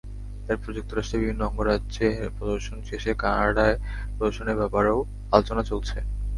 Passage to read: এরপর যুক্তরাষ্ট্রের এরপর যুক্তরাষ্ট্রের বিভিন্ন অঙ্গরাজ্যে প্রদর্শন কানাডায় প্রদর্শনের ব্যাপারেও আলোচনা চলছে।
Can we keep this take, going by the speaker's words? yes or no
no